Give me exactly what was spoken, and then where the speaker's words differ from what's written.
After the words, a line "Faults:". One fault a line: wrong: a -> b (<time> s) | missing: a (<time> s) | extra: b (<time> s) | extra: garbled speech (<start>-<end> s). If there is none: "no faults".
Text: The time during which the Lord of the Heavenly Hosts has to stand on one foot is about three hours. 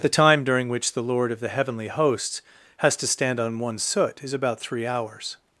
The time during which the Lord of the Heavenly Hosts has to stand on one soot is about three hours.
Faults:
wrong: foot -> soot (3.8 s)